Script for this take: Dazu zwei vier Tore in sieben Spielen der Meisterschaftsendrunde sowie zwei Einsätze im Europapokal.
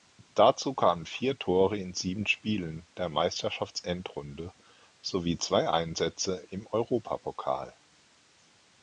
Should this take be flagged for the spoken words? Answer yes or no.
yes